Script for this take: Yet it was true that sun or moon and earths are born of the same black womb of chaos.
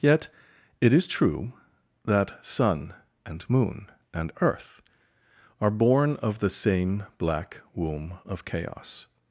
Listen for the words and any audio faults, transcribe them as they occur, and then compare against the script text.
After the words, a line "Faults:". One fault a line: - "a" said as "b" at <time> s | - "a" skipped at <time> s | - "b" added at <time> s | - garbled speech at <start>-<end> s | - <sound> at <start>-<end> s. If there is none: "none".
Yet it is true that sun and moon and earth are born of the same black womb of chaos.
Faults:
- "was" said as "is" at 0.9 s
- "or" said as "and" at 3.2 s
- "earths" said as "earth" at 4.4 s